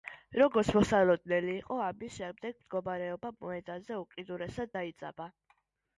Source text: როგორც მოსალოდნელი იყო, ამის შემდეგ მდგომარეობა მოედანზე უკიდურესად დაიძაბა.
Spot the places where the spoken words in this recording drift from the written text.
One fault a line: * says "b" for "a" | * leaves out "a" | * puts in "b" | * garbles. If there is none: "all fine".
all fine